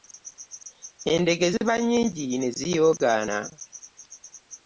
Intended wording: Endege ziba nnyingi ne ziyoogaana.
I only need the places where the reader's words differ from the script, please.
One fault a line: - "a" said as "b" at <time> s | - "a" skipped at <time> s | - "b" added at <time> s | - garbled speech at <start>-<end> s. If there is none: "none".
none